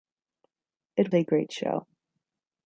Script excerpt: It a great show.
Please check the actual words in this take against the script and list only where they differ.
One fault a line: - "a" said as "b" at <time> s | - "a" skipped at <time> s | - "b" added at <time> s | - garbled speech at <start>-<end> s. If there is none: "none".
none